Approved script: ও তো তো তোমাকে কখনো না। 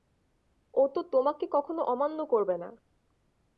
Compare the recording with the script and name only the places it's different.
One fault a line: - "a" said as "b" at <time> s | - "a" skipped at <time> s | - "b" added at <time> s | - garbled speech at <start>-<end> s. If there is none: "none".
- "তো" skipped at 1.0 s
- "অমান্য করবে" added at 1.8 s